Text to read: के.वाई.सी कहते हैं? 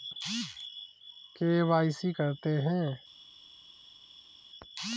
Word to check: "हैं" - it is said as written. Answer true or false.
true